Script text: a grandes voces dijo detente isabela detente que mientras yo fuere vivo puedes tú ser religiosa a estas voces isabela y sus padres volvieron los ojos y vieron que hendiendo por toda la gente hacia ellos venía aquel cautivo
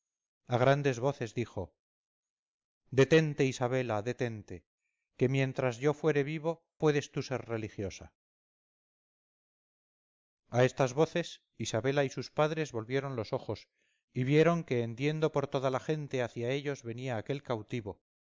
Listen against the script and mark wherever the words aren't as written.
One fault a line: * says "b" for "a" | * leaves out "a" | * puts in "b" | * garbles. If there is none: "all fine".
all fine